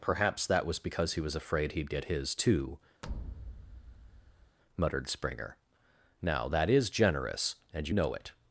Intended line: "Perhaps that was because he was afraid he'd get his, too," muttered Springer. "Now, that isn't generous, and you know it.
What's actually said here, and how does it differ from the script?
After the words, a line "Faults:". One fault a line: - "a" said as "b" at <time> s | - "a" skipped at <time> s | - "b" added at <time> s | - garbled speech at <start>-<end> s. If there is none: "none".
"Perhaps that was because he was afraid he'd get his, too," muttered Springer. "Now, that is generous, and you know it.
Faults:
- "isn't" said as "is" at 6.7 s